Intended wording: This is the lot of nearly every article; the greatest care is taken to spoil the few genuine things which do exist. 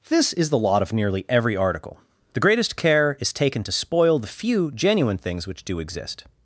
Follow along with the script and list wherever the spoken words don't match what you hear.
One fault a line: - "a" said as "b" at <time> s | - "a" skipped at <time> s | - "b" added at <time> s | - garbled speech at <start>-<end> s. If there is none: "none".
none